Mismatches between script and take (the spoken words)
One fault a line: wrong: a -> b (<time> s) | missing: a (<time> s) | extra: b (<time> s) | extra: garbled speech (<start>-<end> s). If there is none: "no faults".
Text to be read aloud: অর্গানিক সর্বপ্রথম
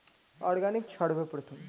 no faults